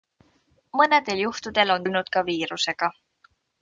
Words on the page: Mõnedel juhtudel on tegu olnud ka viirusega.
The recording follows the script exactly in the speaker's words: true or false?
false